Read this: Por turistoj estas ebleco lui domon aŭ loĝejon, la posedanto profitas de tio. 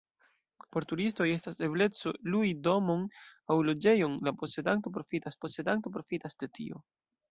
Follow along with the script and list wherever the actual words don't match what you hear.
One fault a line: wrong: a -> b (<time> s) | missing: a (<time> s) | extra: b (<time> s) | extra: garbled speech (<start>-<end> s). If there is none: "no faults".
extra: posedanto profitas (5.4 s)